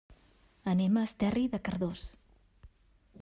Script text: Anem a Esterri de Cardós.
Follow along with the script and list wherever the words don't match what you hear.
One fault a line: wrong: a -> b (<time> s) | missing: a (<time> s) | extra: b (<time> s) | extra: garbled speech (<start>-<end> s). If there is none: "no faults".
no faults